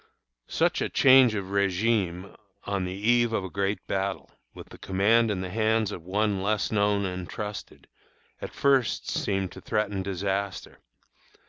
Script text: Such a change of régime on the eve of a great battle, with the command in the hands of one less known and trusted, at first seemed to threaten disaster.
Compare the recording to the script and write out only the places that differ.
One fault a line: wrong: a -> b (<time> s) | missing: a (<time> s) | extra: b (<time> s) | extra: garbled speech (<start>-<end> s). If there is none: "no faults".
no faults